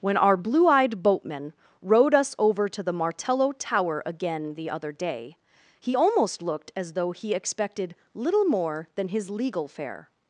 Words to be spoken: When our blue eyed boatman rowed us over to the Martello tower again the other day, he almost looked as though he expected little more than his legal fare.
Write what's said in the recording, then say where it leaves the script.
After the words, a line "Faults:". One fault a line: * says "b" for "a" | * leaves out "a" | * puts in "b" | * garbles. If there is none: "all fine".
When our blue eyed boatman rowed us over to the Martello tower again the other day, he almost looked as though he expected little more than his legal fare.
Faults:
all fine